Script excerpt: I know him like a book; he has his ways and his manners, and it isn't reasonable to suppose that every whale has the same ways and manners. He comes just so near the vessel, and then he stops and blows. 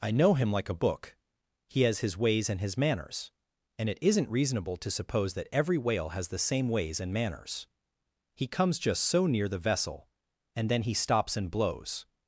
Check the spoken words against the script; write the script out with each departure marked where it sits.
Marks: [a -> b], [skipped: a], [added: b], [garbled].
I know him like a book; he has his ways and his manners, and it isn't reasonable to suppose that every whale has the same ways and manners. He comes just so near the vessel, and then he stops and blows.